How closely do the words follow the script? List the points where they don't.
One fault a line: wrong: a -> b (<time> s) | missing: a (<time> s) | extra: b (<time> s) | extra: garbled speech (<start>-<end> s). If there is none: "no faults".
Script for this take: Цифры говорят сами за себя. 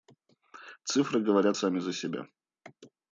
no faults